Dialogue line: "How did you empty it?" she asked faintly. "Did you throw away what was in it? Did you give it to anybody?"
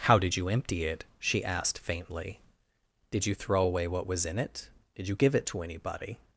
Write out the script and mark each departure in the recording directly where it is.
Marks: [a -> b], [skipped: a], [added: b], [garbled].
"How did you empty it?" she asked faintly. "Did you throw away what was in it? Did you give it to anybody?"